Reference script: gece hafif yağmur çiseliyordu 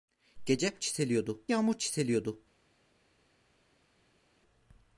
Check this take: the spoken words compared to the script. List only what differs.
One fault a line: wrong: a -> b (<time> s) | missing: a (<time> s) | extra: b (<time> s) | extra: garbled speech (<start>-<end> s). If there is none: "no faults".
wrong: hafif -> çiseliyordu (0.8 s)